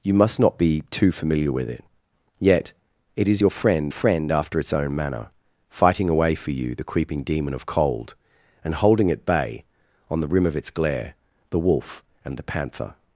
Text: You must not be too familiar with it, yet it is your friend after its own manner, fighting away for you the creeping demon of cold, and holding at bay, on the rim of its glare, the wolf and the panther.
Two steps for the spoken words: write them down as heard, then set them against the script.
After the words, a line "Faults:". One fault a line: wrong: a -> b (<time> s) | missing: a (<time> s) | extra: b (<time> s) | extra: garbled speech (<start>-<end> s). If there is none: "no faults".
You must not be too familiar with it, yet it is your friend friend after its own manner, fighting away for you the creeping demon of cold, and holding at bay, on the rim of its glare, the wolf and the panther.
Faults:
extra: friend (3.9 s)